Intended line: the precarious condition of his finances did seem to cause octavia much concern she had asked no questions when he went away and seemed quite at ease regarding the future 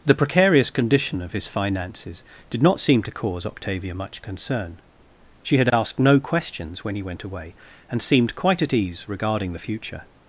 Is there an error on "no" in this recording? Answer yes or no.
no